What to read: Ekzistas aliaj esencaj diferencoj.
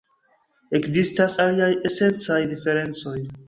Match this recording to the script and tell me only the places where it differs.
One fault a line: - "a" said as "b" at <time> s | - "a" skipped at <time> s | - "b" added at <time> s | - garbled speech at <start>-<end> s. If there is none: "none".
none